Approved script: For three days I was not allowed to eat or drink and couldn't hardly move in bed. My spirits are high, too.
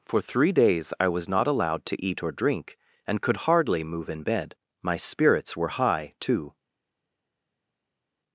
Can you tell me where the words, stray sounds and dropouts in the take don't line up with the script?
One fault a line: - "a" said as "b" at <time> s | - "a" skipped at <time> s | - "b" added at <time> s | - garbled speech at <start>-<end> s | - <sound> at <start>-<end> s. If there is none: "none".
- "couldn't" said as "could" at 3.2 s
- "are" said as "were" at 5.6 s